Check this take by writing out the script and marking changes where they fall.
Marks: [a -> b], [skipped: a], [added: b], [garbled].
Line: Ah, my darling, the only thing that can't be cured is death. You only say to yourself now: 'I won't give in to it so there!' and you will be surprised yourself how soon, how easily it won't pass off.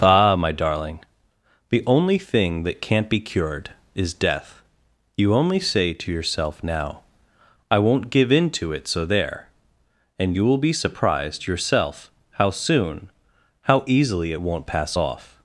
Ah, my darling, the only thing that can't be cured is death. You only say to yourself now: 'I won't give in to it so there!' and you will be surprised yourself how soon, how easily it won't pass off.